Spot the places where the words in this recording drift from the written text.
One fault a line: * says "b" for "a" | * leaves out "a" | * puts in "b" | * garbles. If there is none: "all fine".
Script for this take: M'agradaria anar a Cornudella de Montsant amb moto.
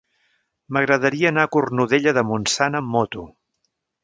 all fine